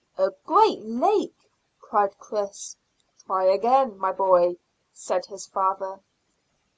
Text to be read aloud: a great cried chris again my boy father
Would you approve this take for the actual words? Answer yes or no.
no